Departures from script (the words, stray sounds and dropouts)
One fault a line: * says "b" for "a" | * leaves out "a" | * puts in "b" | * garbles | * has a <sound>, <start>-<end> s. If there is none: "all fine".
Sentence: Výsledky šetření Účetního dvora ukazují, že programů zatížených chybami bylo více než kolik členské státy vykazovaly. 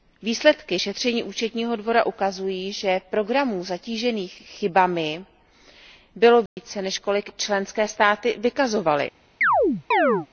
* has a dropout, 6.5-6.6 s
* has a chirp, 9.4-10.3 s